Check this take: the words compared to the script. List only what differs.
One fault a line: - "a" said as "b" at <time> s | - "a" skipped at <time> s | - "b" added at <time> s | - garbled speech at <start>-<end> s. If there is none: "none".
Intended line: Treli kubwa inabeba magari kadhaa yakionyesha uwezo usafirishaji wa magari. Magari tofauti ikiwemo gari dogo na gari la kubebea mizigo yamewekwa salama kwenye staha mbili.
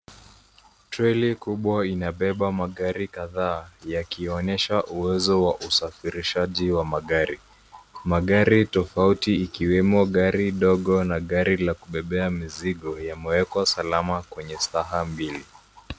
- "wa" added at 5.4 s